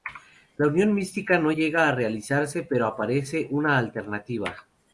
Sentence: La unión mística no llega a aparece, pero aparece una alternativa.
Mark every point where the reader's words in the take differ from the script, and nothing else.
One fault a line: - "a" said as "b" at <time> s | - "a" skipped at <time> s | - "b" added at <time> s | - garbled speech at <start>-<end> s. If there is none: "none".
- "aparece" said as "realizarse" at 1.9 s